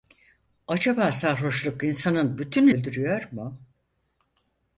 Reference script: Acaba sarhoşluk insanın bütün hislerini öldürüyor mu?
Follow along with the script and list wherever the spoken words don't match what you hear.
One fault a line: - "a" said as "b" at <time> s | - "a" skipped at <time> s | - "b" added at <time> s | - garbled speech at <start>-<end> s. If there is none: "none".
- "hislerini" skipped at 2.7 s